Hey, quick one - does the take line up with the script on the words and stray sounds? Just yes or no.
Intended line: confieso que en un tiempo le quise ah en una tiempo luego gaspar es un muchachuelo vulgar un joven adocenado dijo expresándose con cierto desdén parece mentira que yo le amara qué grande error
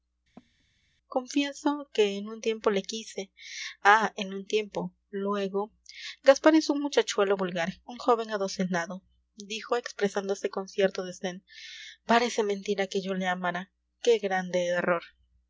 no